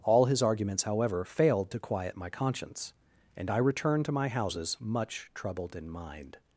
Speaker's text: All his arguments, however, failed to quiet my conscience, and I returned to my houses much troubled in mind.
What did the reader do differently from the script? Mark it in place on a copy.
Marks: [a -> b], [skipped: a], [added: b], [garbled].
All his arguments, however, failed to quiet my conscience, and I returned to my houses much troubled in mind.